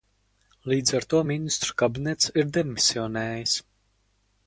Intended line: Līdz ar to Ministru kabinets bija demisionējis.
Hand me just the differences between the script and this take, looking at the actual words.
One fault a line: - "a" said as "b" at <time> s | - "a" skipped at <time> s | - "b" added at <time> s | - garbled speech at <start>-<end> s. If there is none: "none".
- "bija" said as "ir" at 2.4 s